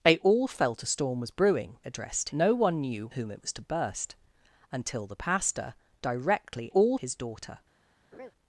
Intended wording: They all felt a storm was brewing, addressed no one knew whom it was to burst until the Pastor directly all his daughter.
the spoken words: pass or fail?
pass